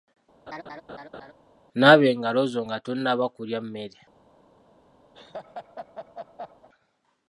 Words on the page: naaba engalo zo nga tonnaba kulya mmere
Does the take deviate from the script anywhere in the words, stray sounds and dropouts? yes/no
yes